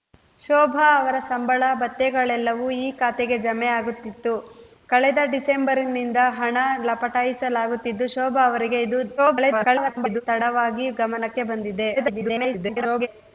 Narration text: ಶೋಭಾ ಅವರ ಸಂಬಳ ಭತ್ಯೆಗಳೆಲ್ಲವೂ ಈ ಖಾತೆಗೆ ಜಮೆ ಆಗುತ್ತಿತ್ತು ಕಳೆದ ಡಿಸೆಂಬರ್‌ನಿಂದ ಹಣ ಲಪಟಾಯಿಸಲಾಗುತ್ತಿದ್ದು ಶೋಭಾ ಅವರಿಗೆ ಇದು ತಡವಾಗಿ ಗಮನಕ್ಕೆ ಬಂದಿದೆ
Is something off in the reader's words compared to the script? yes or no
yes